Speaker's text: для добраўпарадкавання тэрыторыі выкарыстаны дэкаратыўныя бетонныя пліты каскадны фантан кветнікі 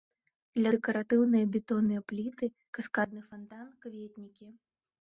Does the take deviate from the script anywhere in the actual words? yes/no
yes